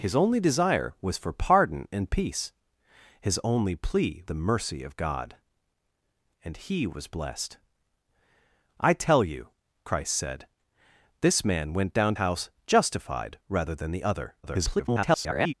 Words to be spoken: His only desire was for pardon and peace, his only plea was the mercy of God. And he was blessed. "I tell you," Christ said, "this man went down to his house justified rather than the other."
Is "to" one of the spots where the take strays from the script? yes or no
yes